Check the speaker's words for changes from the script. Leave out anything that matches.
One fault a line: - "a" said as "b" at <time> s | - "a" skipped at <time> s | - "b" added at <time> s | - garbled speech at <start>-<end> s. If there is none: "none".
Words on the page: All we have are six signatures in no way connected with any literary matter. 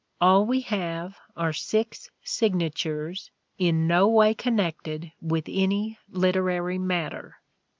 none